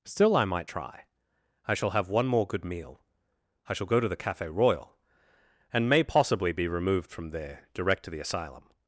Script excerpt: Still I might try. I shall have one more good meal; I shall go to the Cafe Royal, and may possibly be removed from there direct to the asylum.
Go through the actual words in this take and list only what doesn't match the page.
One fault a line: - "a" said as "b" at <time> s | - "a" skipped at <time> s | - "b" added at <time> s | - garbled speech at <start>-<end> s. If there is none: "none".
none